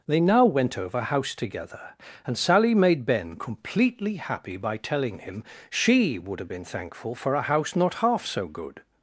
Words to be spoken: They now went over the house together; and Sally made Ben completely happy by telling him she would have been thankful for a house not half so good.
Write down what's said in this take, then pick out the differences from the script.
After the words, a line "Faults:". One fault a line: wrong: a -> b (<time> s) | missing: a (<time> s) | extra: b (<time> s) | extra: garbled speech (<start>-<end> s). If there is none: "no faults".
They now went over house together; and Sally made Ben completely happy by telling him she would have been thankful for a house not half so good.
Faults:
missing: the (1.0 s)